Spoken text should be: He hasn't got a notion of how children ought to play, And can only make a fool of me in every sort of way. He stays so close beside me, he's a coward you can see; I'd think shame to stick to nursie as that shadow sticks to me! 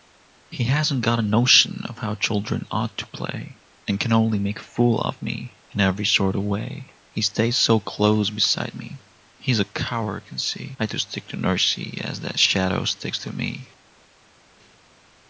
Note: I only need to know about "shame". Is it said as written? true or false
false